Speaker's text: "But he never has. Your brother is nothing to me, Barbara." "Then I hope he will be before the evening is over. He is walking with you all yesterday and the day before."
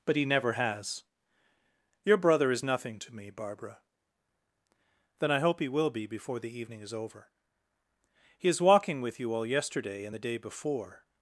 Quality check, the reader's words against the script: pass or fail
pass